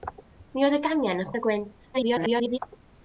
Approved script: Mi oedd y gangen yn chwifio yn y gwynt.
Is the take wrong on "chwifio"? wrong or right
wrong